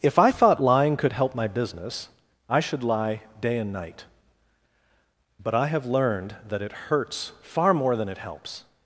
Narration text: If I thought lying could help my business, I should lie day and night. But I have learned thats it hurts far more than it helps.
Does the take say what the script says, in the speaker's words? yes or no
no